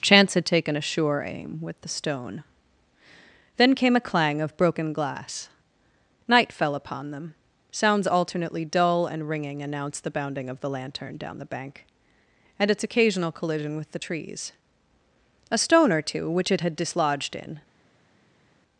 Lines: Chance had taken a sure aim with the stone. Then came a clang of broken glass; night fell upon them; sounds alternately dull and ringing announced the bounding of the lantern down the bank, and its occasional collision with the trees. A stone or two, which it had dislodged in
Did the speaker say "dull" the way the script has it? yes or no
yes